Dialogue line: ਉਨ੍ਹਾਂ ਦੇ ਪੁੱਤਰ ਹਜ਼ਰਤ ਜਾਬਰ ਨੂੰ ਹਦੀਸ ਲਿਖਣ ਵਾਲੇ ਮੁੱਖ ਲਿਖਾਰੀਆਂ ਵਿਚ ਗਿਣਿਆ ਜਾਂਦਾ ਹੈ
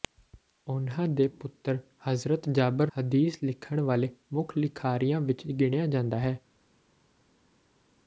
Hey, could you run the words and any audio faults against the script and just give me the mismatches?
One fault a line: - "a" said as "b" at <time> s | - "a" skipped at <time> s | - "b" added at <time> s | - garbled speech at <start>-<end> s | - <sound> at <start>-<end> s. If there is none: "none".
- "ਨੂੰ" skipped at 2.9 s